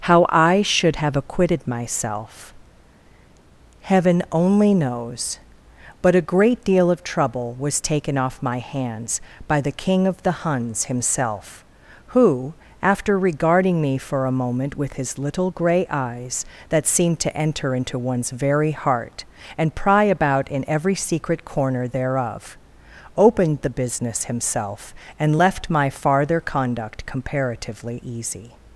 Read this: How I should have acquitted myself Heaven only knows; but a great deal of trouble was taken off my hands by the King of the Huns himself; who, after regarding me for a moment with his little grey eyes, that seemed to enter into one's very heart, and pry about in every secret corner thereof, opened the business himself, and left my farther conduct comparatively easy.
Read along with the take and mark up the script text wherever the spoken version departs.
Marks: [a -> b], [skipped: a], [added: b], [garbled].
How I should have acquitted myself Heaven only knows; but a great deal of trouble was taken off my hands by the King of the Huns himself; who, after regarding me for a moment with his little grey eyes, that seemed to enter into one's very heart, and pry about in every secret corner thereof, opened the business himself, and left my farther conduct comparatively easy.